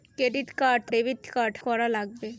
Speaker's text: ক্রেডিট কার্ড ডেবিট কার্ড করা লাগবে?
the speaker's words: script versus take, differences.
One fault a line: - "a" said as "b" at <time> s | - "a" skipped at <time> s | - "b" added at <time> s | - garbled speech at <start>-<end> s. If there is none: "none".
none